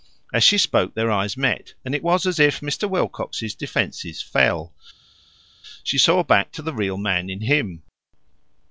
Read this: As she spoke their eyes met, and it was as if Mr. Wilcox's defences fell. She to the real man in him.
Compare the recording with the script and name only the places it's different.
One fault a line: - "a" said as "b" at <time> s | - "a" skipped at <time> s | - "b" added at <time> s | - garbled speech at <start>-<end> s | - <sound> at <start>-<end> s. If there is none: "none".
- "saw back" added at 6.0 s